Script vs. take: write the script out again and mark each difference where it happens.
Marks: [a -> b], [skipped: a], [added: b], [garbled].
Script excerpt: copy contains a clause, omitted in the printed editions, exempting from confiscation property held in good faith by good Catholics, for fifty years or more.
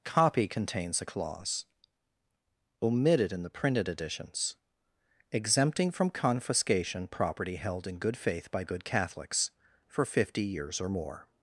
copy contains a clause, omitted in the printed editions, exempting from confiscation property held in good faith by good Catholics, for fifty years or more.